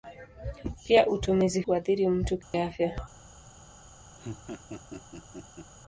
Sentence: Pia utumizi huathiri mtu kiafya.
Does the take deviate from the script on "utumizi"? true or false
false